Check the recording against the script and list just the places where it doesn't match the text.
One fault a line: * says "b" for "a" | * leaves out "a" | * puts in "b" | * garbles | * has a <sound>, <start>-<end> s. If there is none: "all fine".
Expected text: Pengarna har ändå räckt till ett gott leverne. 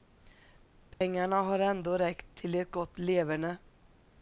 * has a dropout, 0.9-1.0 s